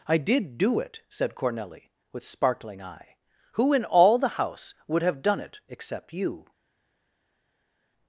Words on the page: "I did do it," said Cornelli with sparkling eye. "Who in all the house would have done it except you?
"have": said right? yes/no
yes